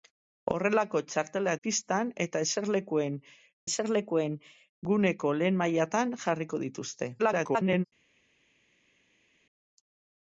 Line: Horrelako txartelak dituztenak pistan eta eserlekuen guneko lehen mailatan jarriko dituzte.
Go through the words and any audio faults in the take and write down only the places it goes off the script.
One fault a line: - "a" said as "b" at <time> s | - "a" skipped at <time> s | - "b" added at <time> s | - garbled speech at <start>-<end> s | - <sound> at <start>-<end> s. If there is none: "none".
- "dituztenak" skipped at 1.6 s
- "eserlekuen" added at 3.7 s
- garbled speech at 7.2-7.8 s